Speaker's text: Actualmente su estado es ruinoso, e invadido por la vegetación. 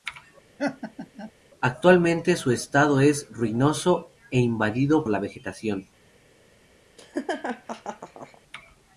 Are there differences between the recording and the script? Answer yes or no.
yes